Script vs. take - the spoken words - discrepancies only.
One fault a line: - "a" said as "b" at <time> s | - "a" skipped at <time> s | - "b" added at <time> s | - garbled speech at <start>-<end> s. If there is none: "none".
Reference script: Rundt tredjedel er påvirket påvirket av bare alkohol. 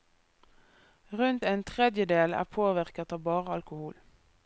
- "en" added at 1.4 s
- "påvirket" skipped at 3.2 s